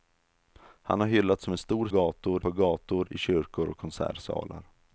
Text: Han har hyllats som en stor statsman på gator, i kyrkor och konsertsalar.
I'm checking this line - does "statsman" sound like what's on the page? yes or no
no